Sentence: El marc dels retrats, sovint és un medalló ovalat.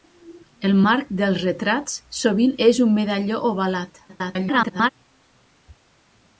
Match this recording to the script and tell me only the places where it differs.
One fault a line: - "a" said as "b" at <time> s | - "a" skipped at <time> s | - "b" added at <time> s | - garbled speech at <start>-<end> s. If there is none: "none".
- garbled speech at 4.1-4.9 s